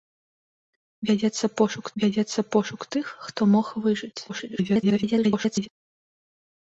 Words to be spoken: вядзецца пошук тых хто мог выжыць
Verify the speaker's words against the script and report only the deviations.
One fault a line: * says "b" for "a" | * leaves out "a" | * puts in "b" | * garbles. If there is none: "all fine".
* puts in "вядзецца пошук"
* garbles